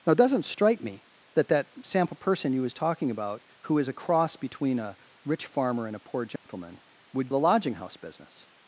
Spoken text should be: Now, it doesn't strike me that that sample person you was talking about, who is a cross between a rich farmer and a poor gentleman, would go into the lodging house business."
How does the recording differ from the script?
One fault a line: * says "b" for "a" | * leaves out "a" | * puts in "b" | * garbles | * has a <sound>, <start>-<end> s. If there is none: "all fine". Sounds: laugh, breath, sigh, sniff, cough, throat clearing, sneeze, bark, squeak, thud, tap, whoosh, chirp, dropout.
* has a dropout, 6.4-6.5 s
* leaves out "go into"